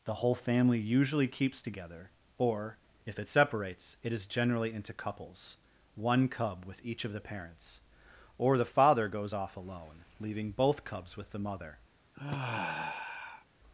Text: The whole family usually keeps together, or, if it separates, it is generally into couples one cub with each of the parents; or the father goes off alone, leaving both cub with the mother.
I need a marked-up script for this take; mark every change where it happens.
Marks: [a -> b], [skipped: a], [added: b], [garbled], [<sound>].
The whole family usually keeps together, or, if it separates, it is generally into couples one cub with each of the parents; or the father goes off alone, leaving both [cub -> cubs] with the mother. [sigh]